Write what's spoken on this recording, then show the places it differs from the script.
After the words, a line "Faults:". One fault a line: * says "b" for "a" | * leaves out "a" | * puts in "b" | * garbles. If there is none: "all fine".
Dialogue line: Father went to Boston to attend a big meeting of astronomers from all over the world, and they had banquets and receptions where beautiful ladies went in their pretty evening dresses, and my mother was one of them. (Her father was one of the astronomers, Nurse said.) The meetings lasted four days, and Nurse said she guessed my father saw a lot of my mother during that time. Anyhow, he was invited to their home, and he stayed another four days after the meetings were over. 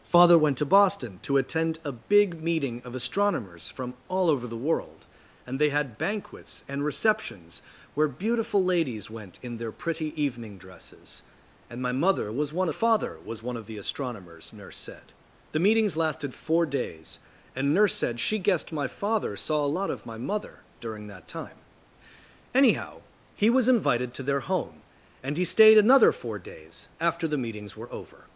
Father went to Boston to attend a big meeting of astronomers from all over the world, and they had banquets and receptions where beautiful ladies went in their pretty evening dresses, and my mother was one father was one of the astronomers, Nurse said.) The meetings lasted four days, and Nurse said she guessed my father saw a lot of my mother during that time. Anyhow, he was invited to their home, and he stayed another four days after the meetings were over.
Faults:
* leaves out "of them Her"